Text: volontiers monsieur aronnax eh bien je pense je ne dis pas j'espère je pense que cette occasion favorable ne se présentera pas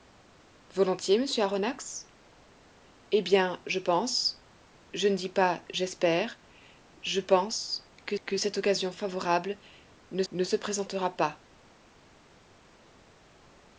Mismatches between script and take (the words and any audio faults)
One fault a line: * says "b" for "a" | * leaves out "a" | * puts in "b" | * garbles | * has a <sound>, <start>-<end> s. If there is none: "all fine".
* puts in "que"
* puts in "ne"